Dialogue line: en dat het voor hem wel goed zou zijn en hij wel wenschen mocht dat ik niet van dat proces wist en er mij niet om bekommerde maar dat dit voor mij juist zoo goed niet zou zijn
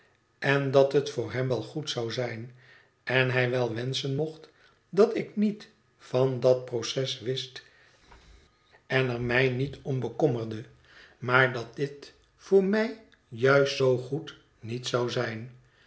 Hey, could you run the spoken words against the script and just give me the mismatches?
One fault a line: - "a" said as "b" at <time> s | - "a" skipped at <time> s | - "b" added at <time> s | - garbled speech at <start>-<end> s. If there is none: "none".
none